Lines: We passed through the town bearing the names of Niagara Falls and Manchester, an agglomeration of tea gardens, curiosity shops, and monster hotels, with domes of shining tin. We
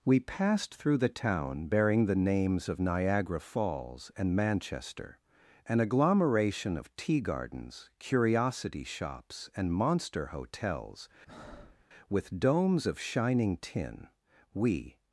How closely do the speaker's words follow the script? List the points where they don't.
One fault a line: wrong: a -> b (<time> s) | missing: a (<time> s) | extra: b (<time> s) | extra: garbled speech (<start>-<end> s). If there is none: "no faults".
no faults